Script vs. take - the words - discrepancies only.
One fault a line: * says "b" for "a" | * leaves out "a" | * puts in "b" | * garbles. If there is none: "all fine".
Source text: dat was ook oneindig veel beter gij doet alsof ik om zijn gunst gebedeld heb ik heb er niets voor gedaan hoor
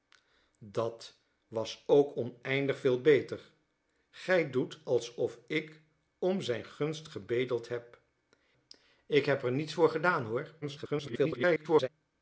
* garbles